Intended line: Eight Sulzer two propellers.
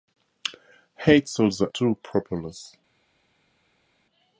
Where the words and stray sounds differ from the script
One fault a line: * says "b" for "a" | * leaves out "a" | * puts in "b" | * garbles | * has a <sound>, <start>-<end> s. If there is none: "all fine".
all fine